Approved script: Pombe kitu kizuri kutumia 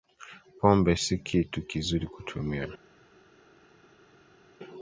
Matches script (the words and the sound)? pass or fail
fail